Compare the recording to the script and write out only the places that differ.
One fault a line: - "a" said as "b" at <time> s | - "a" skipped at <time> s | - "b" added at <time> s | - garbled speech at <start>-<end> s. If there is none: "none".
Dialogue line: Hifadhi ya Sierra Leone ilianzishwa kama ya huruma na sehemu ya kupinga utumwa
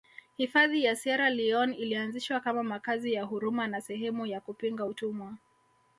- "makazi" added at 2.6 s